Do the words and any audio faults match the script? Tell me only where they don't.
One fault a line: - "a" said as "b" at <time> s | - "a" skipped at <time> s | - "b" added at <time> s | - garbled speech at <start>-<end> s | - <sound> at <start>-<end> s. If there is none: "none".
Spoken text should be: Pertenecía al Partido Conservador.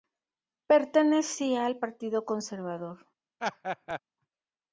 - laugh at 3.4-4.0 s